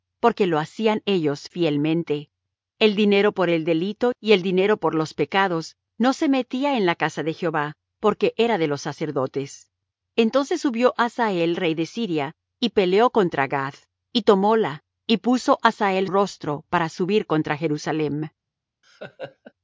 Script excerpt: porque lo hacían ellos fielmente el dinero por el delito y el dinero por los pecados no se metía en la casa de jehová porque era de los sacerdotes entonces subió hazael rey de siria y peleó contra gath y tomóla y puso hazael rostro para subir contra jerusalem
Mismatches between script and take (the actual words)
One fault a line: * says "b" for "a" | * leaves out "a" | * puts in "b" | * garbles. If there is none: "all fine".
all fine